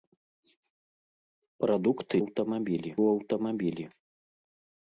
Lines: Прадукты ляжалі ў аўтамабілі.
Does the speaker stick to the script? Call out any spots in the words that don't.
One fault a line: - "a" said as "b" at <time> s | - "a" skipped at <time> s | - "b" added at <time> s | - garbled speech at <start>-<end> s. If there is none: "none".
- "ляжалі" said as "аўтамабілі" at 2.2 s